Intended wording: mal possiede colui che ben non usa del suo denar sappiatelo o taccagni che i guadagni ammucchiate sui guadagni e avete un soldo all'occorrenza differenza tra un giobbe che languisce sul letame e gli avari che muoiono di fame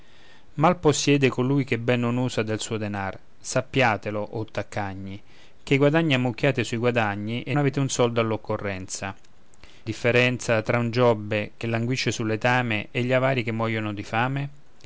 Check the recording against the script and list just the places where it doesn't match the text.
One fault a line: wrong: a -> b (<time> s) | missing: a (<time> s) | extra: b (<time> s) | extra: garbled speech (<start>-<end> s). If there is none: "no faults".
no faults